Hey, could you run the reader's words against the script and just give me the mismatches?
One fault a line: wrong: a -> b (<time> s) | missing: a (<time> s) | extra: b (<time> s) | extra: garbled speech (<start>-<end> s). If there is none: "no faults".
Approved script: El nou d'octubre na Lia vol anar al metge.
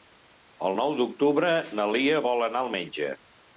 no faults